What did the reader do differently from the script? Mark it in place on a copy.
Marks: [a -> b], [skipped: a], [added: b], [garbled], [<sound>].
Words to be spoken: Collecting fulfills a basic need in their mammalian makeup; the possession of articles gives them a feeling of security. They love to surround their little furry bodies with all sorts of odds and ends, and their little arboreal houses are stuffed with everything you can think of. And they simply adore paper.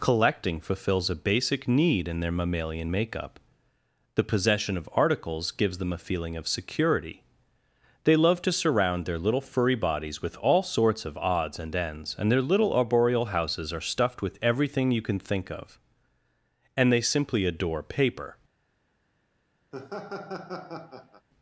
Collecting fulfills a basic need in their mammalian makeup; the possession of articles gives them a feeling of security. They love to surround their little furry bodies with all sorts of odds and ends, and their little arboreal houses are stuffed with everything you can think of. And they simply adore paper. [laugh]